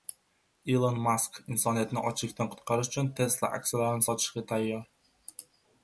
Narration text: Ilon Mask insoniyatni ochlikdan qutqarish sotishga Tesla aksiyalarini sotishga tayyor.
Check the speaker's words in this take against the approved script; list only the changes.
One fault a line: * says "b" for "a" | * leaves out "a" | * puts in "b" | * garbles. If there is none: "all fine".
* says "uchun" for "sotishga"